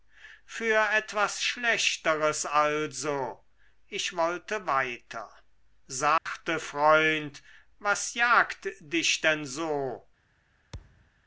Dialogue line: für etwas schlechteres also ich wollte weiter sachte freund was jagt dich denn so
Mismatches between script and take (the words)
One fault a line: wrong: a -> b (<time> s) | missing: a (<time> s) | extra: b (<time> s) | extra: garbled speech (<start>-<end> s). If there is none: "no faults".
no faults